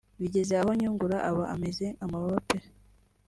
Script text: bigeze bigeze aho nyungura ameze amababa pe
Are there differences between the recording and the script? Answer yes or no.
yes